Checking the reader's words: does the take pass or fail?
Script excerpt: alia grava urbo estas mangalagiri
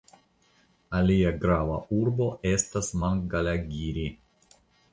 pass